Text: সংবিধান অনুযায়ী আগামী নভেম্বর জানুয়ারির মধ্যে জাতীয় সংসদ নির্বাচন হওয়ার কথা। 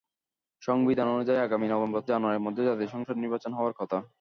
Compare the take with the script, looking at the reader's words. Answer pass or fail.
pass